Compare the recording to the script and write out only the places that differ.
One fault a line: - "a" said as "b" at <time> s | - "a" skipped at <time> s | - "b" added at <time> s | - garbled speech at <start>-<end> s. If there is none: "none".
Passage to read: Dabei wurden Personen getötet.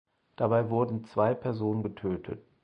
- "zwei" added at 1.0 s